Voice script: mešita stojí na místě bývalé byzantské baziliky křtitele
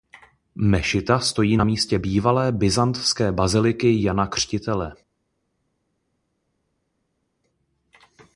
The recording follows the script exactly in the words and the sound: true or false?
false